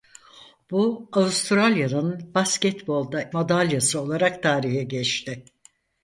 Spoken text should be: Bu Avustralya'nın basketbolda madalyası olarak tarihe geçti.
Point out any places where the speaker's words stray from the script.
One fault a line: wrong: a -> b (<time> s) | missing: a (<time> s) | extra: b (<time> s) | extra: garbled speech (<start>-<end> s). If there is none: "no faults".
no faults